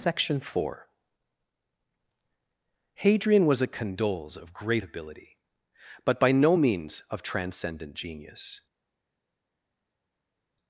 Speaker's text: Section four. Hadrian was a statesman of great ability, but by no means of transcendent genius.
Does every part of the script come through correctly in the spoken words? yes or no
no